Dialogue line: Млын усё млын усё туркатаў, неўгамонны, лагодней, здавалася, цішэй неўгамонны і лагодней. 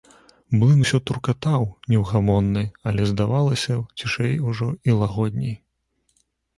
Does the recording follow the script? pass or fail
fail